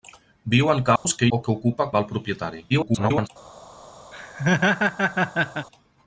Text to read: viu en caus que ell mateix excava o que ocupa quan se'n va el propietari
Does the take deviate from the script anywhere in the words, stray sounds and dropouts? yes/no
yes